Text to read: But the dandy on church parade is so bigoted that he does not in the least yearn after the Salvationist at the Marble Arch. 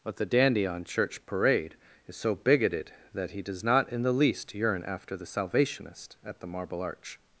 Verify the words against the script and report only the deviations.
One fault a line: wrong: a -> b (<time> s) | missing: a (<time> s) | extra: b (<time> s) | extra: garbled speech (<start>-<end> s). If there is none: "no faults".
no faults